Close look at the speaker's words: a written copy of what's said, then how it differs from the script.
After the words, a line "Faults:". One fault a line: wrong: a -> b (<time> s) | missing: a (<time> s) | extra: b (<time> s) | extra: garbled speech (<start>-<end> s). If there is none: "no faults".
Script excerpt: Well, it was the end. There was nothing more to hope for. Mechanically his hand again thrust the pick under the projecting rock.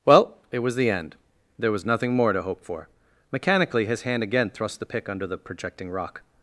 Well, it was the end. There was nothing more to hope for. Mechanically his hand again thrust the pick under the projecting rock.
Faults:
no faults